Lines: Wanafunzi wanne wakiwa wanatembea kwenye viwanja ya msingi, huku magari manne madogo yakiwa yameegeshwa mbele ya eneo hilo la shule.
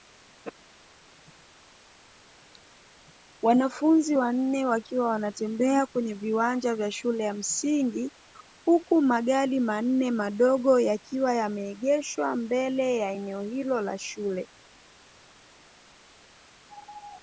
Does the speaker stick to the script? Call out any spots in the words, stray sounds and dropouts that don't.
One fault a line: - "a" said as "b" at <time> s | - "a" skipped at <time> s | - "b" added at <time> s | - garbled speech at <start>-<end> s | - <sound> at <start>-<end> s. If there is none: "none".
- "vya shule" added at 6.7 s